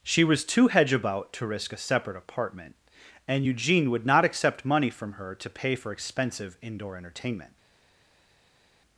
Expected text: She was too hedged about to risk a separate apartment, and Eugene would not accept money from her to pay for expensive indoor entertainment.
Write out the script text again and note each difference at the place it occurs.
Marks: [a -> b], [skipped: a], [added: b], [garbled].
She was too [hedged -> hedge] about to risk a separate apartment, and Eugene would not accept money from her to pay for expensive indoor entertainment.